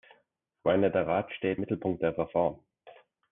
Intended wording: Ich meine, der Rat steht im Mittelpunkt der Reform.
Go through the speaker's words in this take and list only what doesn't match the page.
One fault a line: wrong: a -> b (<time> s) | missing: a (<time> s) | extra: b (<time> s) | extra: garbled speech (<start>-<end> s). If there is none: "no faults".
missing: im (1.6 s)